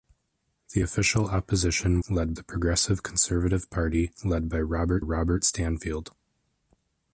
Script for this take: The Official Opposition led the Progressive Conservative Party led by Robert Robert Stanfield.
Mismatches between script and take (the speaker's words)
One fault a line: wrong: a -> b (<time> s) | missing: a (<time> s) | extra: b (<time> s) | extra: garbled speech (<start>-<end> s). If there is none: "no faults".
no faults